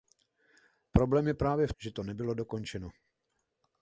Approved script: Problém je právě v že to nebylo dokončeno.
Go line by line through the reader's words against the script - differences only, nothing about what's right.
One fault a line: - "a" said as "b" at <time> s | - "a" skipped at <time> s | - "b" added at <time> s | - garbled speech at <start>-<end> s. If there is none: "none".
none